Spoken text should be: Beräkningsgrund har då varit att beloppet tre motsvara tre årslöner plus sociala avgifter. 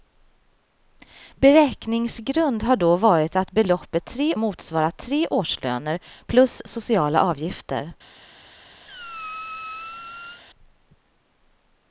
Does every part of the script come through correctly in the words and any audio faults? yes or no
no